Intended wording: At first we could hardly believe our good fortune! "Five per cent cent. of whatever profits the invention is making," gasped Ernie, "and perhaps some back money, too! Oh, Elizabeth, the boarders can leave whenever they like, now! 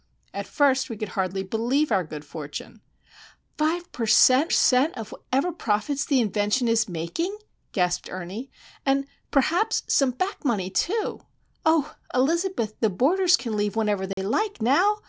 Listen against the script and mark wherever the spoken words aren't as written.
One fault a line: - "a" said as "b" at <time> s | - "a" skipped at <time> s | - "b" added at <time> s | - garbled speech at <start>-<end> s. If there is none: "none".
none